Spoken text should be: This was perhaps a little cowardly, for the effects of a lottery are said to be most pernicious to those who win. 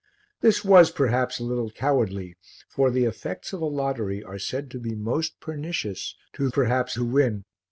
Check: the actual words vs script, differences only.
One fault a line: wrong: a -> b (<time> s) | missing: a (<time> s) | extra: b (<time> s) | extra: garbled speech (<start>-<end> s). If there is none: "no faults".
wrong: those -> perhaps (6.5 s)